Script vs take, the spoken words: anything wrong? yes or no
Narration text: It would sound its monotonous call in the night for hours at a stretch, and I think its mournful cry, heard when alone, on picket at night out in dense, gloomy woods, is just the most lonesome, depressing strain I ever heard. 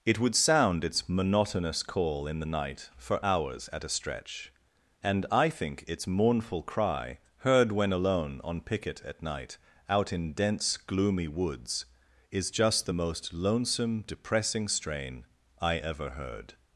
no